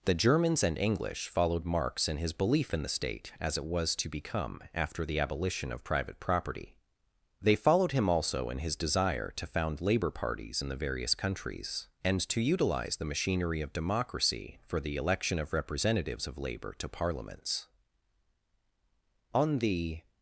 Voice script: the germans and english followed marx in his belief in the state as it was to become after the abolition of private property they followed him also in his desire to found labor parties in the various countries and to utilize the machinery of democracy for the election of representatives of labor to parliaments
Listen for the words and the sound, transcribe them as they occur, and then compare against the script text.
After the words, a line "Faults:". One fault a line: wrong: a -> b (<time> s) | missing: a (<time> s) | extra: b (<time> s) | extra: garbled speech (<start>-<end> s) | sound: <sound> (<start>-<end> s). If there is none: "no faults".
the germans and english followed marx in his belief in the state as it was to become after the abolition of private property they followed him also in his desire to found labor parties in the various countries and to utilize the machinery of democracy for the election of representatives of labor to parliaments on the
Faults:
extra: on the (19.3 s)